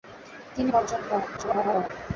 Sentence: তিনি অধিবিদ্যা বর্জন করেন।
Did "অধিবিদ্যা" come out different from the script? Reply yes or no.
yes